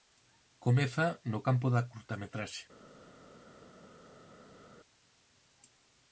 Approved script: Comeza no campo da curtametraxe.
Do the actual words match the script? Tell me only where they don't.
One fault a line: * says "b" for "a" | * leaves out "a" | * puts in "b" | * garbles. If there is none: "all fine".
all fine